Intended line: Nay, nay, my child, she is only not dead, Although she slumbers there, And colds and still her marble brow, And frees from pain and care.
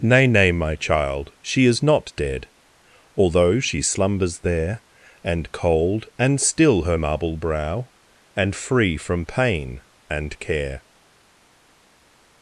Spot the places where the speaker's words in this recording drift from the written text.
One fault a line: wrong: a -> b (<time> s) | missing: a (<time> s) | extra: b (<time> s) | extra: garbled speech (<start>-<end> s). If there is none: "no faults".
missing: only (1.8 s)
wrong: colds -> cold (5.5 s)
wrong: frees -> free (8.5 s)